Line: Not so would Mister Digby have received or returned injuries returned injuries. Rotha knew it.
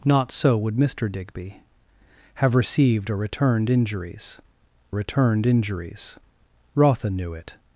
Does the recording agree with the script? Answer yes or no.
yes